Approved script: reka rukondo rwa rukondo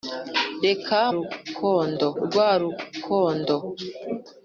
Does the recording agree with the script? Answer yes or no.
yes